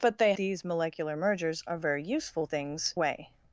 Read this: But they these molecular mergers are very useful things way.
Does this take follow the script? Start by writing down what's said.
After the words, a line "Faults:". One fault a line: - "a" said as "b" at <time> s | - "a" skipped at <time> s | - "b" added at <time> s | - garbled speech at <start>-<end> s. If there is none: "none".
But they these molecular mergers are very useful things way.
Faults:
none